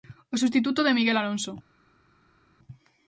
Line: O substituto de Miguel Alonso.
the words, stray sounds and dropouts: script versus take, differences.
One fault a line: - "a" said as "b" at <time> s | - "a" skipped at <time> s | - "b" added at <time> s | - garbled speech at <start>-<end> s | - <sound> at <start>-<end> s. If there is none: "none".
none